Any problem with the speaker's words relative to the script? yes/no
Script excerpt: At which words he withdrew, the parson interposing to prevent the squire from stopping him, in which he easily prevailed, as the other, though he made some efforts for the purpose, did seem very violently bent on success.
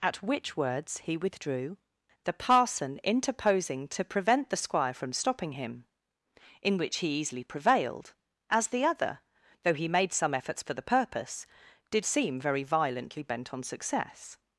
no